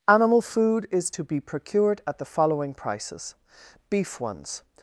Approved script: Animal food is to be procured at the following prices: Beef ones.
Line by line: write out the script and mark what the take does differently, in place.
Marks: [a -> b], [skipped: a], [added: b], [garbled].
Animal food is to be procured at the following prices: Beef ones.